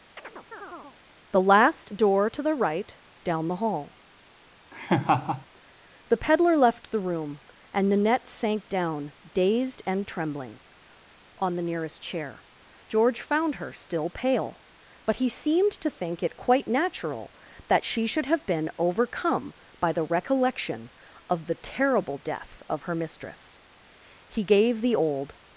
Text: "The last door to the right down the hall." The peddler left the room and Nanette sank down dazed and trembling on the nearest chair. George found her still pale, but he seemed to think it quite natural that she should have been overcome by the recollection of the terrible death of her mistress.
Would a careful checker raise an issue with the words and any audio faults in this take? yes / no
yes